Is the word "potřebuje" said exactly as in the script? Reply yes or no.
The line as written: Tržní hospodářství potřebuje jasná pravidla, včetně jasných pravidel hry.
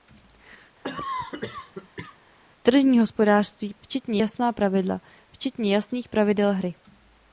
no